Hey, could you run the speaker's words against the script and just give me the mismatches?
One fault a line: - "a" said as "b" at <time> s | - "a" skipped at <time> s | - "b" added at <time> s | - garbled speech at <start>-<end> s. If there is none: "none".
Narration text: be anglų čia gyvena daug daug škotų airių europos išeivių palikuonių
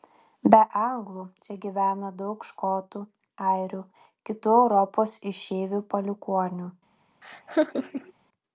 - "daug" skipped at 2.5 s
- "kitų" added at 4.3 s